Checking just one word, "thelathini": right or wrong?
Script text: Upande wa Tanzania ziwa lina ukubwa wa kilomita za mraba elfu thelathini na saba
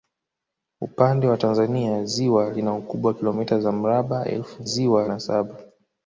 wrong